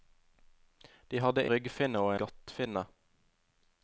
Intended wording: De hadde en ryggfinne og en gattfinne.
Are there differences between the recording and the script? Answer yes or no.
yes